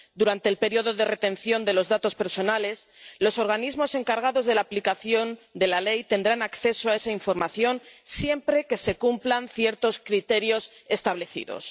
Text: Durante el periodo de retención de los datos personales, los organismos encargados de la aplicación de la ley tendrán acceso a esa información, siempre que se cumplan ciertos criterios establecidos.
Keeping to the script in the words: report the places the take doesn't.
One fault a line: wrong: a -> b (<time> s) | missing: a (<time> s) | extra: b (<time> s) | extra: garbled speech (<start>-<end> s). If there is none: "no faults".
no faults